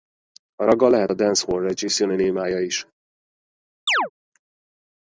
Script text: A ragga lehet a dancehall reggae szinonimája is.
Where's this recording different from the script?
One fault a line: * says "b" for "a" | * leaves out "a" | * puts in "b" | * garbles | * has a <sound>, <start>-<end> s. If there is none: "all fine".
* has a chirp, 3.9-4.1 s